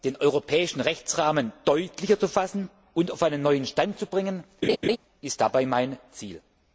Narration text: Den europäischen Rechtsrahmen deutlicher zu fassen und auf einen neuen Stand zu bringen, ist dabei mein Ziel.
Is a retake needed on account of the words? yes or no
no